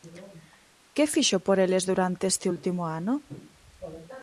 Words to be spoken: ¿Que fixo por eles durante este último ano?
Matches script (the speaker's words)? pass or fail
pass